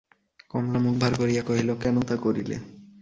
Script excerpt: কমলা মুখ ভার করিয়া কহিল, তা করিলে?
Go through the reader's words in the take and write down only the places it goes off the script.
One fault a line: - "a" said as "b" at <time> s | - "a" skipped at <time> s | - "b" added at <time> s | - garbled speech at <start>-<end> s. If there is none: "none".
- "কেন" added at 1.7 s